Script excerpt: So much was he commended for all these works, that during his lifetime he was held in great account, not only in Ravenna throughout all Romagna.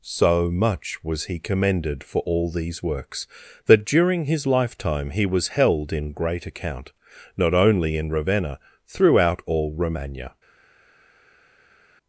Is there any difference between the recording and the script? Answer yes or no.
no